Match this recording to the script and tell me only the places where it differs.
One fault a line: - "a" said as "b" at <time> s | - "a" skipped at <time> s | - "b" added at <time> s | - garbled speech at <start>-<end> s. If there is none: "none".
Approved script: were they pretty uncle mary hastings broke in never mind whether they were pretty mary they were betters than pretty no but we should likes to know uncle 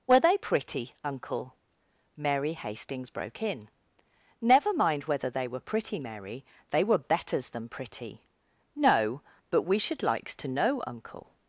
none